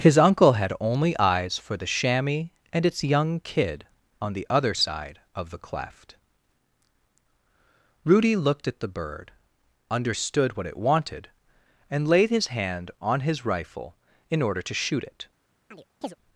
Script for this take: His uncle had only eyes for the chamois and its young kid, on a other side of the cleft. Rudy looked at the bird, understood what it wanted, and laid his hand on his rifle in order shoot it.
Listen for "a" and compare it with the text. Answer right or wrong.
wrong